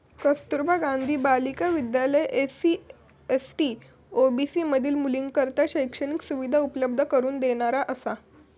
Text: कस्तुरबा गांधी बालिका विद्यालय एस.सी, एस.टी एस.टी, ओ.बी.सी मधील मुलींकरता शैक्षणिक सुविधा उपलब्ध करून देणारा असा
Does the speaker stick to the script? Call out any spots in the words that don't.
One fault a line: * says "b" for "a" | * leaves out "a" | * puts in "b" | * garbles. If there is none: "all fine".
* leaves out "एस.टी"